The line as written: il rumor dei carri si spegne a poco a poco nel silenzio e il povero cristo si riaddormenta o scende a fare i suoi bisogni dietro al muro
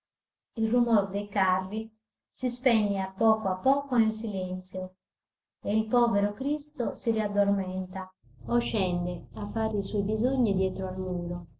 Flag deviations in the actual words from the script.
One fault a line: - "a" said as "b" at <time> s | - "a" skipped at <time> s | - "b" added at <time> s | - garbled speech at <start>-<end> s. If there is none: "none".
none